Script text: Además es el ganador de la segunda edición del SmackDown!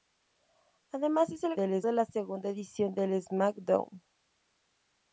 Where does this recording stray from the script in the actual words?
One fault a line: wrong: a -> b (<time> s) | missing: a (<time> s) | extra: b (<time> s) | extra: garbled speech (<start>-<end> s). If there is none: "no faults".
wrong: ganador -> del (1.6 s)